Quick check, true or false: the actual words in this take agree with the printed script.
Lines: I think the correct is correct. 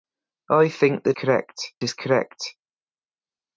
true